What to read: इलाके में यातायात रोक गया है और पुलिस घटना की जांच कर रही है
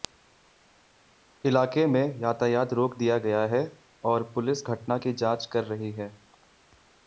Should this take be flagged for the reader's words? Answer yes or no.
yes